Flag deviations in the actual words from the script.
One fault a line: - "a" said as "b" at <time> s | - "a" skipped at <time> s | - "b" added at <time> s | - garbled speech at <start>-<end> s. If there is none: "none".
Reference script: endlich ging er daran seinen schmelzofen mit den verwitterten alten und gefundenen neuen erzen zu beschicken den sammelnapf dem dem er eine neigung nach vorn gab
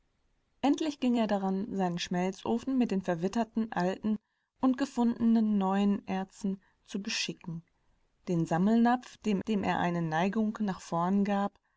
none